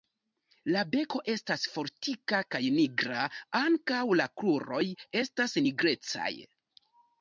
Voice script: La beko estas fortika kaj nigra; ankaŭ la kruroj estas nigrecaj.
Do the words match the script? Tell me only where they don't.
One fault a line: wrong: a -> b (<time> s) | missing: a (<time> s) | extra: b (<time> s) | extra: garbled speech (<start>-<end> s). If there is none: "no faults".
no faults